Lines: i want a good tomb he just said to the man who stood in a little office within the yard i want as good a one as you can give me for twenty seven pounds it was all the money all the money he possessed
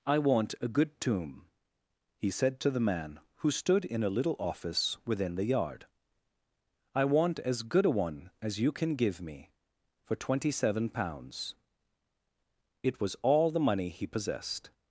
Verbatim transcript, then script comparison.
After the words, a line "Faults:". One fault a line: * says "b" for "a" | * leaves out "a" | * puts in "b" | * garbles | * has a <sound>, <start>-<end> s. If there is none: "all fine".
i want a good tomb he said to the man who stood in a little office within the yard i want as good a one as you can give me for twenty seven pounds it was all the money he possessed
Faults:
* leaves out "just"
* leaves out "all the money"